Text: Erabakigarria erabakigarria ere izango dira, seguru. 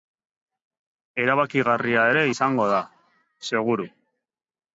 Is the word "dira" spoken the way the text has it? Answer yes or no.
no